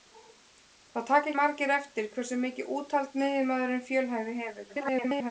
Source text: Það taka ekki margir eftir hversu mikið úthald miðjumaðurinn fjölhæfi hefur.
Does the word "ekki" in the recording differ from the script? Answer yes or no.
yes